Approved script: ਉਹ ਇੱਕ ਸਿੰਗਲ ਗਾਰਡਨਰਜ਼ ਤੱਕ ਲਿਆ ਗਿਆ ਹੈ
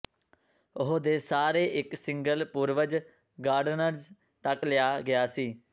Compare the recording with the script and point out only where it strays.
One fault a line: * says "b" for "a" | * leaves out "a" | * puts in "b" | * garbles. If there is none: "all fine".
* puts in "ਦੇ ਸਾਰੇ"
* puts in "ਪੂਰਵਜ"
* says "ਸੀ" for "ਹੈ"